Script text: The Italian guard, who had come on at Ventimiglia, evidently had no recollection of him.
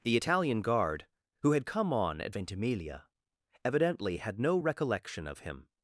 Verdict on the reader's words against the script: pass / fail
pass